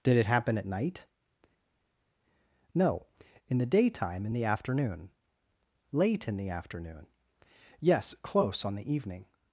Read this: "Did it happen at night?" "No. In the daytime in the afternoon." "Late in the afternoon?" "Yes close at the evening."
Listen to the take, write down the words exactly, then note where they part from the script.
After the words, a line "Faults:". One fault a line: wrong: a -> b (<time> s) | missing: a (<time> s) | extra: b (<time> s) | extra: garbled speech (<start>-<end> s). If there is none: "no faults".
"Did it happen at night?" "No. In the daytime in the afternoon." "Late in the afternoon?" "Yes close on the evening."
Faults:
wrong: at -> on (8.6 s)